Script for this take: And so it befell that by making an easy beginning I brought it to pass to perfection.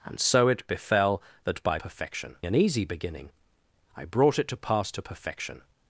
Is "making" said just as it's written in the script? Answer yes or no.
no